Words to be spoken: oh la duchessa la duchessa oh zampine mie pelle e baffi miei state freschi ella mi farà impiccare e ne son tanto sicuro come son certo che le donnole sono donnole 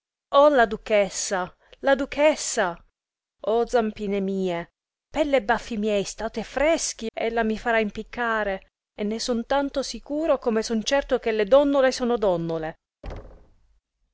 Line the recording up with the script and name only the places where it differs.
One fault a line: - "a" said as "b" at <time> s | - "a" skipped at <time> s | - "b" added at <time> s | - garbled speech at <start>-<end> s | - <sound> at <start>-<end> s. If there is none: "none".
- thud at 13.0-13.8 s